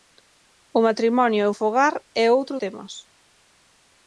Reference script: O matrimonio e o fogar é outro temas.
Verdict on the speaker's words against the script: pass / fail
pass